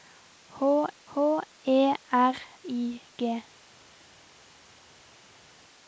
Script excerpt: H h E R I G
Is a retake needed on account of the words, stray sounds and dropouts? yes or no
no